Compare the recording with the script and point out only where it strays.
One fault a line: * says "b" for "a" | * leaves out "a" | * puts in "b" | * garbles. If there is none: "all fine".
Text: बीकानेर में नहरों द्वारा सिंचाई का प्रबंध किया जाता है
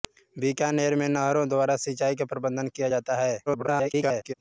* garbles